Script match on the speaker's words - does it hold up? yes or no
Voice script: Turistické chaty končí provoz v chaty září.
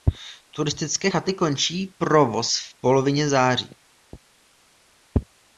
no